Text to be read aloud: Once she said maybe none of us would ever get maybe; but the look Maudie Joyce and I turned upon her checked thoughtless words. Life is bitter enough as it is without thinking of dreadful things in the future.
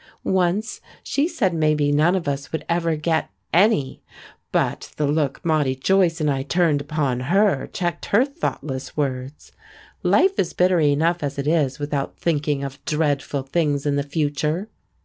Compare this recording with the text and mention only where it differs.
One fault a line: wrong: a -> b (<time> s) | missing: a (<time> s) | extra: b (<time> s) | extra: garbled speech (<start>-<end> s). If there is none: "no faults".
wrong: maybe -> any (3.5 s)
extra: her (8.1 s)